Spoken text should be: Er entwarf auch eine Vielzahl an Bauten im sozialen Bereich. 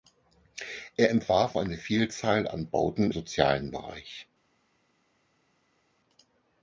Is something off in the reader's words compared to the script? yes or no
yes